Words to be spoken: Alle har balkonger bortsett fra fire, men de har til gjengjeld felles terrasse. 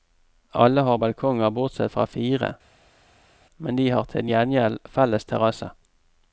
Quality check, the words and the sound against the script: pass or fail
pass